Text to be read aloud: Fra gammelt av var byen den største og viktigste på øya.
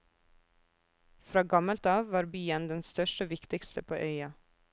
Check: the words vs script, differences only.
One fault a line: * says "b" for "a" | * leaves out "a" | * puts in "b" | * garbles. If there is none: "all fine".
all fine